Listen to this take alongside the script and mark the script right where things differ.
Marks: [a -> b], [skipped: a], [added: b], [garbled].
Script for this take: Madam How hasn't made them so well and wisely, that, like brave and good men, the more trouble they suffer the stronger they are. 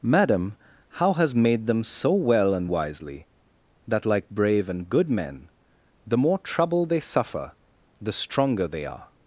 Madam How [hasn't -> has] made them so well and wisely, that, like brave and good men, the more trouble they suffer the stronger they are.